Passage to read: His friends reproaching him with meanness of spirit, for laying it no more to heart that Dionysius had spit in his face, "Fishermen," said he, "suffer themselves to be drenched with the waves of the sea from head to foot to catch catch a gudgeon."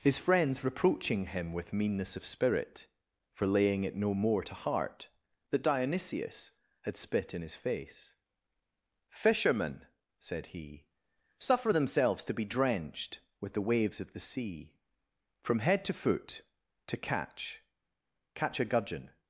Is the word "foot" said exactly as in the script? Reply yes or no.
yes